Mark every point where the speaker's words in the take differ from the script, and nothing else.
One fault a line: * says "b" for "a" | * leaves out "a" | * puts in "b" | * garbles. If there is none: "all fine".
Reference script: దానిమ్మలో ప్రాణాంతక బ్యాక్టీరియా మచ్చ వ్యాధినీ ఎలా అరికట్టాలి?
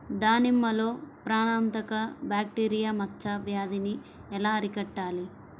all fine